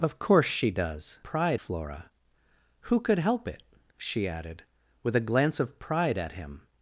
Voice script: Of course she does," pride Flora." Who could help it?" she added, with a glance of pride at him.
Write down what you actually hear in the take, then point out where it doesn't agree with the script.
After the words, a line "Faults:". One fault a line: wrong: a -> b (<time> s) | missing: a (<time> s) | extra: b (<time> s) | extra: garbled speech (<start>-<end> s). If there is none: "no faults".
Of course she does," pride Flora." Who could help it?" she added, with a glance of pride at him.
Faults:
no faults